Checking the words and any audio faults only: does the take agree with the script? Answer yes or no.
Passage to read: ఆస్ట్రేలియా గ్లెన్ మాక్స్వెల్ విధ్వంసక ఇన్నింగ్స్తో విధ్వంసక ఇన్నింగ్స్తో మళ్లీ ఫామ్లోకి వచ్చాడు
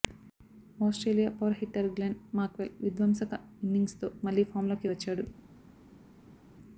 no